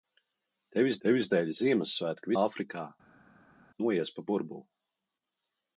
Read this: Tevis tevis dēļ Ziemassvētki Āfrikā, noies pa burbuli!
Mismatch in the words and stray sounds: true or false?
false